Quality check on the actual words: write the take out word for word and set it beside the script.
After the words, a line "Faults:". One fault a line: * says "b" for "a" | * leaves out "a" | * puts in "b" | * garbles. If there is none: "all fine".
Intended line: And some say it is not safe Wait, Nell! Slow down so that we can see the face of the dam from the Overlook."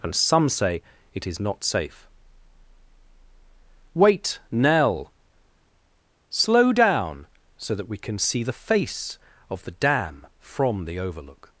And some say it is not safe Wait, Nell! Slow down so that we can see the face of the dam from the Overlook."
Faults:
all fine